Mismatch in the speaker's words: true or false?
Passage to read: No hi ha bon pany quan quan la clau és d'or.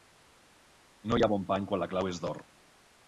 true